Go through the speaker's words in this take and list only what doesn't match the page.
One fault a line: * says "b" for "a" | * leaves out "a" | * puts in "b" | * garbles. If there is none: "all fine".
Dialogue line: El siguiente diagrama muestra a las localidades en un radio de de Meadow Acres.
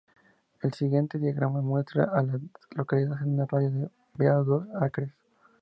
all fine